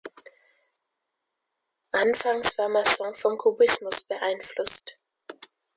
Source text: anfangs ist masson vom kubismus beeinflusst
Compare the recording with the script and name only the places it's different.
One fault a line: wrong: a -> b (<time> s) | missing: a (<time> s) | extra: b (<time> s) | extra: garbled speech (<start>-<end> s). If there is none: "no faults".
wrong: ist -> war (2.6 s)